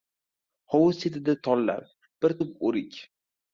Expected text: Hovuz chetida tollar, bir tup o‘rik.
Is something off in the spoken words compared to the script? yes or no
no